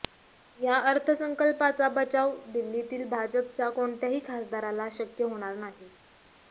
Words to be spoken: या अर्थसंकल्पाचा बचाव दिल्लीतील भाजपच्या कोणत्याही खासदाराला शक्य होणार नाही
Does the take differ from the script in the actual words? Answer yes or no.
no